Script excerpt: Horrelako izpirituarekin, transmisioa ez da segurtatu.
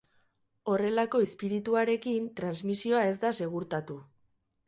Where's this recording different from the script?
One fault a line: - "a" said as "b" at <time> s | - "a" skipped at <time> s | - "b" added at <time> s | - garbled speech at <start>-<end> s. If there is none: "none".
none